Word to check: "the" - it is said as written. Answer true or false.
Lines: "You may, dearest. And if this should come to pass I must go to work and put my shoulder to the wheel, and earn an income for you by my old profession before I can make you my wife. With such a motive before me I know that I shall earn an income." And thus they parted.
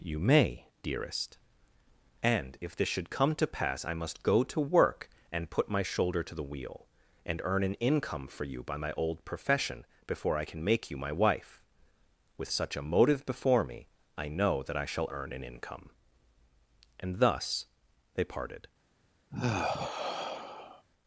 true